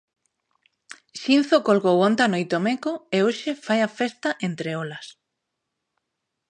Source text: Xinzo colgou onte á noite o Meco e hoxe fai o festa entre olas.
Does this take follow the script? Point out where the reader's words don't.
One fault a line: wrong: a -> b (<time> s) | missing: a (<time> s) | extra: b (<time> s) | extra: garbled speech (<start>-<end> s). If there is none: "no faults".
wrong: o -> a (3.8 s)